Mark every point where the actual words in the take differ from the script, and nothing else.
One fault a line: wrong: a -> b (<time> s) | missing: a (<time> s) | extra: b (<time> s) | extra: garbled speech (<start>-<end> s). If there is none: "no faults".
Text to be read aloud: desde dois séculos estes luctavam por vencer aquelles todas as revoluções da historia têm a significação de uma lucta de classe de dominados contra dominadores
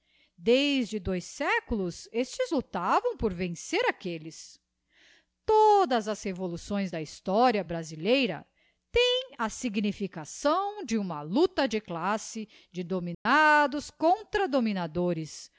extra: brasileira (7.6 s)